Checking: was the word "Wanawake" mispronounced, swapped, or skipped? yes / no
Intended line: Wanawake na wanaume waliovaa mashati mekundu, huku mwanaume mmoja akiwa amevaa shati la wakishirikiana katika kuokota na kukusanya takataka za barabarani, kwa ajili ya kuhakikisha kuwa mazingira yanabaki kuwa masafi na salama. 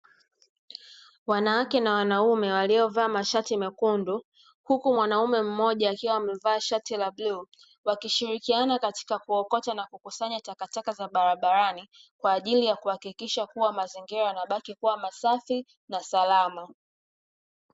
no